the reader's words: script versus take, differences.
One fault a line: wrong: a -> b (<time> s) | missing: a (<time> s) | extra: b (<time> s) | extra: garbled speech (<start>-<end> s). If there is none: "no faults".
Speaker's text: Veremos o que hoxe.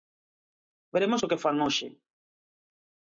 extra: fan (1.4 s)